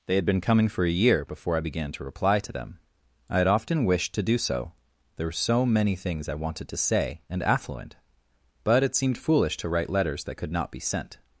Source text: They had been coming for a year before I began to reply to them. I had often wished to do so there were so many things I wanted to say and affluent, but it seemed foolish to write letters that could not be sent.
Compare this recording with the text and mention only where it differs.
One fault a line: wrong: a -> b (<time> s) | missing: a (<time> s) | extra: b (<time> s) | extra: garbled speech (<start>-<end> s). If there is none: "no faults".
no faults